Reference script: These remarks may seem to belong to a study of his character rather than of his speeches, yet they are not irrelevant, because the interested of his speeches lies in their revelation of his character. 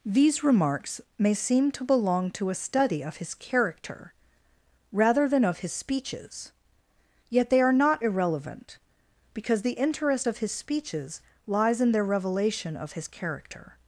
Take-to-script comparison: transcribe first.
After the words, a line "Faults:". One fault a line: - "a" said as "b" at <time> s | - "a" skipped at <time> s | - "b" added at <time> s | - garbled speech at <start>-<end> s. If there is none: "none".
These remarks may seem to belong to a study of his character rather than of his speeches, yet they are not irrelevant, because the interest of his speeches lies in their revelation of his character.
Faults:
- "interested" said as "interest" at 9.8 s